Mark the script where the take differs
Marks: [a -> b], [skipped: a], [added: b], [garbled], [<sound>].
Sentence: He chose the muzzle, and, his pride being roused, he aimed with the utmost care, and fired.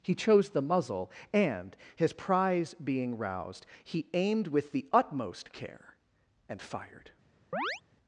He chose the muzzle, and, his [pride -> prize] being roused, he aimed with the utmost care, and fired. [chirp]